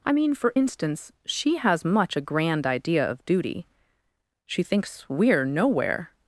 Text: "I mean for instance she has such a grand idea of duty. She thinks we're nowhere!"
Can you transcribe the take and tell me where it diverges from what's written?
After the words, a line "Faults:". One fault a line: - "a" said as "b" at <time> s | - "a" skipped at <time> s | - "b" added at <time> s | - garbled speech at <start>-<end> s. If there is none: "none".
"I mean for instance she has much a grand idea of duty. She thinks we're nowhere!"
Faults:
- "such" said as "much" at 1.8 s